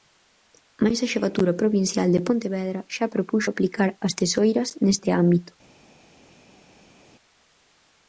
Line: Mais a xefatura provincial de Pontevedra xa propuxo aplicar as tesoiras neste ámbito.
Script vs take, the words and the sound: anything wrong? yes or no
no